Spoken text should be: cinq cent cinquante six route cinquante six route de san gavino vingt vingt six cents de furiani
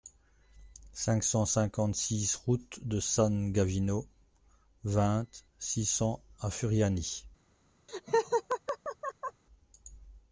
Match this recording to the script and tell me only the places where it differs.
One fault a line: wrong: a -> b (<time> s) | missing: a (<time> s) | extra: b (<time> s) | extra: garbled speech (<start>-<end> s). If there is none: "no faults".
missing: cinquante six route (2.8 s)
missing: vingt (5.3 s)
wrong: de -> à (6.4 s)